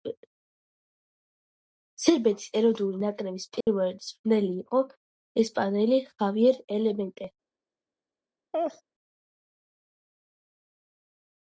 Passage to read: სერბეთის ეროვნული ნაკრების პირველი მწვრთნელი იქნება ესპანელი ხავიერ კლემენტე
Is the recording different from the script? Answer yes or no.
yes